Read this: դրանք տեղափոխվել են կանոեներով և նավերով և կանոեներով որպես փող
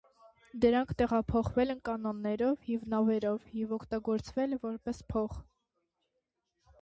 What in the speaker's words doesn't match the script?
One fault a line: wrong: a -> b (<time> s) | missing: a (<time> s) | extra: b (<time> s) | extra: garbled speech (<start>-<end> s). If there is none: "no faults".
wrong: կանոեներով -> օգտագործվել (3.8 s)